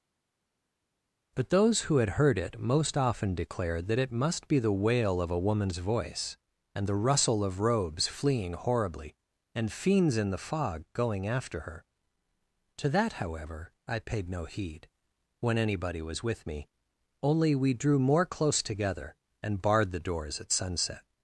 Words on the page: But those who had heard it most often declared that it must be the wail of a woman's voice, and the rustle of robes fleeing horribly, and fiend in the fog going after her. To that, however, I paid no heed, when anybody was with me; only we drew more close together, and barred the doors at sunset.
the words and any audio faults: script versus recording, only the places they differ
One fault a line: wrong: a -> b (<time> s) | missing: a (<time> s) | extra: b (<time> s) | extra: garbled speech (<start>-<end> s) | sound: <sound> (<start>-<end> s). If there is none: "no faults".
wrong: fiend -> fiends (9.7 s)